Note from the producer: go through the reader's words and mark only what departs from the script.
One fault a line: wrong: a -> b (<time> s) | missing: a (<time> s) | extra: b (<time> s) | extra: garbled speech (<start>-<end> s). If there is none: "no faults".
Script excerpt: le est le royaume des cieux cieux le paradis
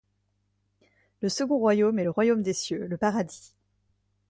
extra: second royaume (1.3 s)
missing: cieux (2.9 s)